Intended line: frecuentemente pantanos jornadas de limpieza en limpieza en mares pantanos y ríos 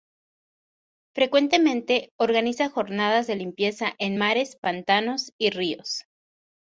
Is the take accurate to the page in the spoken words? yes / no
no